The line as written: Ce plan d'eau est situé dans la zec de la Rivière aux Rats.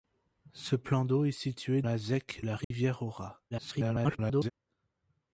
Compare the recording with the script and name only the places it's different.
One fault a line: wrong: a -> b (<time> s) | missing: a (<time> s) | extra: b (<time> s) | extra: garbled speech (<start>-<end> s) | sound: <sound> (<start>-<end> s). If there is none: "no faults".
missing: dans (1.8 s)
missing: de (2.4 s)
sound: dropout (2.6-2.7 s)
extra: garbled speech (3.5-4.5 s)